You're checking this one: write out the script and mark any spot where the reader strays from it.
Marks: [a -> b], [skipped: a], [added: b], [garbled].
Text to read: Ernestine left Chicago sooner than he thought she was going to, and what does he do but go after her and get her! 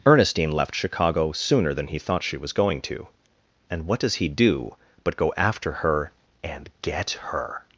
Ernestine left Chicago sooner than he thought she was going to, and what does he do but go after her and get her!